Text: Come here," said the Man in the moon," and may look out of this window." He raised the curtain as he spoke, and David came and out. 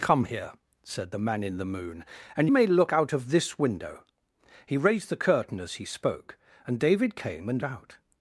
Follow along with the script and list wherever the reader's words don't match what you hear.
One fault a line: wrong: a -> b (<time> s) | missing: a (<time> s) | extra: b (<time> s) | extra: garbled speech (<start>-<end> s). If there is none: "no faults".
no faults